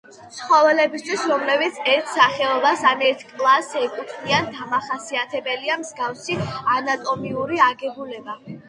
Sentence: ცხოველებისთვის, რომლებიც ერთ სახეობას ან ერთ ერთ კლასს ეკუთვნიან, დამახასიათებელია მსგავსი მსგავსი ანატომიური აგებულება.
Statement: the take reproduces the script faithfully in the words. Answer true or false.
false